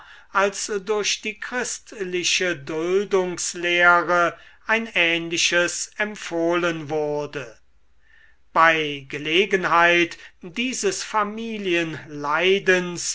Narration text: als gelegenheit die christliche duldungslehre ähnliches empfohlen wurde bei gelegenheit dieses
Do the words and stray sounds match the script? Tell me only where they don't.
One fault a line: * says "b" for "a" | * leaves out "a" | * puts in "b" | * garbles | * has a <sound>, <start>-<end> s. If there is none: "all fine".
* says "durch" for "gelegenheit"
* puts in "ein"